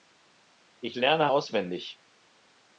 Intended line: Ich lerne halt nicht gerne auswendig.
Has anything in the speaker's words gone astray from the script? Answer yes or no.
yes